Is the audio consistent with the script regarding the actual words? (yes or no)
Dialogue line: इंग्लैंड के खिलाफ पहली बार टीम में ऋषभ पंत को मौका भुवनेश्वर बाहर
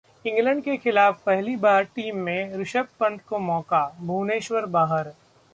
yes